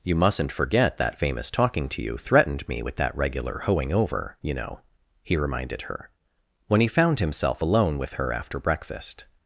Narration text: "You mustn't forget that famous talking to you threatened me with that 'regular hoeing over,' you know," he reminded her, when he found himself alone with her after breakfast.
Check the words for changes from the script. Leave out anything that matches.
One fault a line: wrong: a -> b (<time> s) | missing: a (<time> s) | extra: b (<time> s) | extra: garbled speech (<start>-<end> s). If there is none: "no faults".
no faults